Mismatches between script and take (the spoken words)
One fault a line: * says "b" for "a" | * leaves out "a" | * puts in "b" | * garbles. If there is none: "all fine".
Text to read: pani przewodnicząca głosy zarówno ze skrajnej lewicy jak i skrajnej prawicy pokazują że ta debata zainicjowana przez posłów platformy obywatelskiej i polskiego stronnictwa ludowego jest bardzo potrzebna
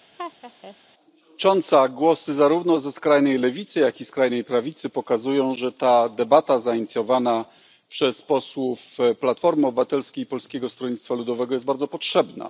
all fine